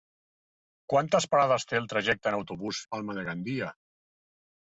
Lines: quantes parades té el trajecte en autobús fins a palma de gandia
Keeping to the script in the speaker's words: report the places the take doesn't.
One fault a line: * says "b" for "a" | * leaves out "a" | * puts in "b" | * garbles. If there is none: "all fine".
* leaves out "fins"